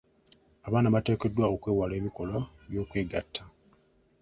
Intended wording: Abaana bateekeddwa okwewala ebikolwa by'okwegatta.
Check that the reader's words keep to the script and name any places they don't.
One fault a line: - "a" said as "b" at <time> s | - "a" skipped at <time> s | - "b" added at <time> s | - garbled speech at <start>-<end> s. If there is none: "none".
none